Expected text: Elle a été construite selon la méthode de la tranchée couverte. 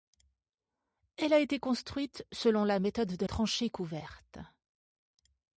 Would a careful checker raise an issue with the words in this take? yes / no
yes